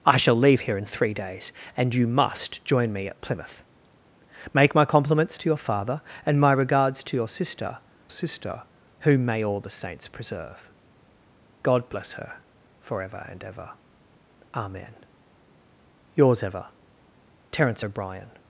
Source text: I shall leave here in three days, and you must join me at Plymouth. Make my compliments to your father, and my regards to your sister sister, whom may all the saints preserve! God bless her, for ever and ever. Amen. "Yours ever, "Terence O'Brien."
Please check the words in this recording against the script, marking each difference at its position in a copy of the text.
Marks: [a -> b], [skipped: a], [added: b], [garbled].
I shall leave here in three days, and you must join me at Plymouth. Make my compliments to your father, and my regards to your sister sister, whom may all the saints preserve! God bless her, for ever and ever. Amen. "Yours ever, "Terence O'Brien."